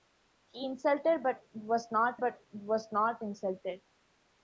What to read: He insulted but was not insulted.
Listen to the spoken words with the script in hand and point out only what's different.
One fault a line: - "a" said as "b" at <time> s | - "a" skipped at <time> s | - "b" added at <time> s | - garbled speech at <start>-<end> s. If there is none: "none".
- "but was not" added at 2.2 s